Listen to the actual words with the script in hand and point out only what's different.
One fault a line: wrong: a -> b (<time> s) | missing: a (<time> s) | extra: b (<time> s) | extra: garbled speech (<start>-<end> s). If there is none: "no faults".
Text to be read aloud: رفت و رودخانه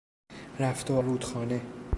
no faults